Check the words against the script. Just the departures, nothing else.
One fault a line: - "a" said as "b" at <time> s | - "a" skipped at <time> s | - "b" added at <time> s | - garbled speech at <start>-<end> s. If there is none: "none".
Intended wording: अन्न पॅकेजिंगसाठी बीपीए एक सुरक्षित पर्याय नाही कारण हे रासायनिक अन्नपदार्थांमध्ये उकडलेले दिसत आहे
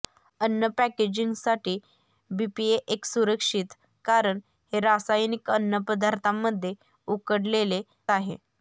- "पर्याय नाही" skipped at 3.7 s
- "दिसत" skipped at 7.8 s